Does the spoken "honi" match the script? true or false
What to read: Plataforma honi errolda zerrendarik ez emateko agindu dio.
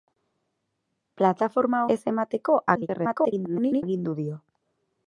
false